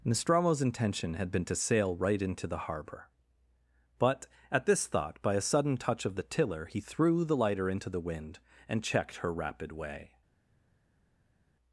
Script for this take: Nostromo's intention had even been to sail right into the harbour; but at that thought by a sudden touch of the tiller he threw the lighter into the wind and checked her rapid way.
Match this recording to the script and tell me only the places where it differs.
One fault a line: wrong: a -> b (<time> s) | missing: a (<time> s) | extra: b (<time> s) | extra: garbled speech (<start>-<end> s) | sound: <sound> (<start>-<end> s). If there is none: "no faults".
missing: even (1.3 s)
wrong: that -> this (4.7 s)